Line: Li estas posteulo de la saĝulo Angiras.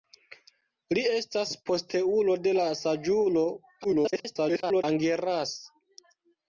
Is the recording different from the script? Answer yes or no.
yes